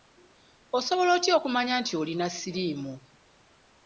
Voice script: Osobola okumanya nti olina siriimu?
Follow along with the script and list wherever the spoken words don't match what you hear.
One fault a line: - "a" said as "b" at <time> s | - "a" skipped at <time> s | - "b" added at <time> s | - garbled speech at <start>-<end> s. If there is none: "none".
- "otya" added at 1.2 s